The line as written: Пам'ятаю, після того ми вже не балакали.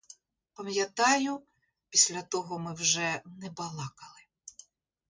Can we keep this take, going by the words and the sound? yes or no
yes